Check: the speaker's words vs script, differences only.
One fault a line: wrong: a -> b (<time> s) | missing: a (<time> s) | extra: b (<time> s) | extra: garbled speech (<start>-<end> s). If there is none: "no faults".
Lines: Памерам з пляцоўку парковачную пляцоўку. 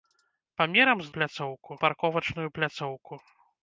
no faults